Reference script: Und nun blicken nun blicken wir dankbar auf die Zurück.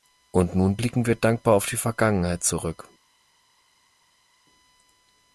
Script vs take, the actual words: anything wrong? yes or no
yes